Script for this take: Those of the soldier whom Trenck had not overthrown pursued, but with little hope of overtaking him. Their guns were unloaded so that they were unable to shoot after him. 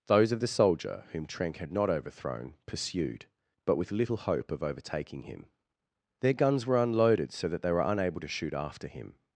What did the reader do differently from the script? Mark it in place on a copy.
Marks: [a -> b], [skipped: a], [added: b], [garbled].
Those of the soldier whom Trenck had not overthrown pursued, but with little hope of overtaking him. Their guns were unloaded so that they were unable to shoot after him.